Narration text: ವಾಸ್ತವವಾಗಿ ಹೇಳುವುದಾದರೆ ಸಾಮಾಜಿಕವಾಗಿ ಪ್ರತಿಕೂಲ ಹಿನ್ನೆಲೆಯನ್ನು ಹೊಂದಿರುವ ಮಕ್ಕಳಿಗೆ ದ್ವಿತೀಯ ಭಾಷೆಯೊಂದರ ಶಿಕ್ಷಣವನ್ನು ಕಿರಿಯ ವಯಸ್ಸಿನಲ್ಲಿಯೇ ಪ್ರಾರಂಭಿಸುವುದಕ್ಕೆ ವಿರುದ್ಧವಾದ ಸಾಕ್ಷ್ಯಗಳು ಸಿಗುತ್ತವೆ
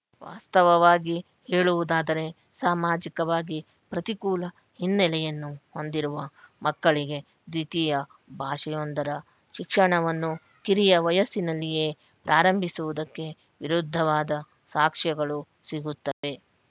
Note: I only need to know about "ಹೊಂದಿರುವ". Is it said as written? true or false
true